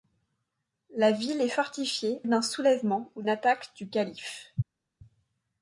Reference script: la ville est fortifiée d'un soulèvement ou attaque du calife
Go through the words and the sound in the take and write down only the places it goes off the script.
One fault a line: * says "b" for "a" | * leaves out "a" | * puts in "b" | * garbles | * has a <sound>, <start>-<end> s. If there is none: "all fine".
all fine